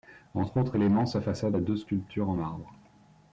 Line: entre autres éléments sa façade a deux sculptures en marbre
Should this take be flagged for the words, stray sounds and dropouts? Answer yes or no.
no